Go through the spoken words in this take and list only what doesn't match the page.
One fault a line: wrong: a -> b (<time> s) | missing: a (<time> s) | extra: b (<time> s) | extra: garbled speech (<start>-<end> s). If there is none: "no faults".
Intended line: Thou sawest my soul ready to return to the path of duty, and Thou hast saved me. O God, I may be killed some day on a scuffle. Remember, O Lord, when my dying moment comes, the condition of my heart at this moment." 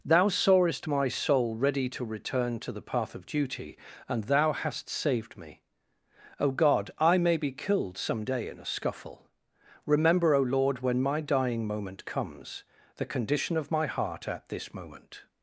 wrong: on -> in (8.5 s)